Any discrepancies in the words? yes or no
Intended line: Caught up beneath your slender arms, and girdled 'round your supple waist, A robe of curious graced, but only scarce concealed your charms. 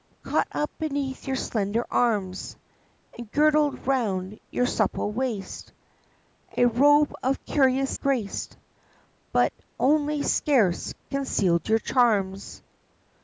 no